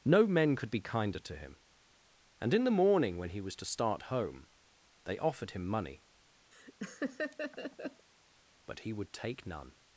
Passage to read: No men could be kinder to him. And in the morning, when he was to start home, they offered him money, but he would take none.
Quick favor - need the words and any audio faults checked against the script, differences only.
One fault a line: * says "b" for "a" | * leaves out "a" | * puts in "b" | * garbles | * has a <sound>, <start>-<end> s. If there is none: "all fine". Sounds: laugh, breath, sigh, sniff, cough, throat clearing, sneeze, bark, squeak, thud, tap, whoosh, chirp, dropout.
* has a laugh, 6.5-8.1 s